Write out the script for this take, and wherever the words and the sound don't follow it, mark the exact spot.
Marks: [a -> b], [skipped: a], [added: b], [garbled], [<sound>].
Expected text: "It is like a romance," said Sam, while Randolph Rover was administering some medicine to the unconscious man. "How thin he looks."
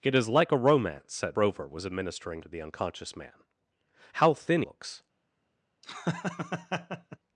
"It is like a romance," said [skipped: Sam, while Randolph] Rover was administering [skipped: some medicine] to the unconscious man. "How thin [skipped: he] looks." [laugh]